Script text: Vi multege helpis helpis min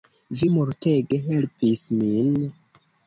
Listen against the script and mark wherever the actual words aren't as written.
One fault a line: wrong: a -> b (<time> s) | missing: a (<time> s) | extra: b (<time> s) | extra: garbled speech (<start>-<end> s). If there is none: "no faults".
missing: helpis (1.8 s)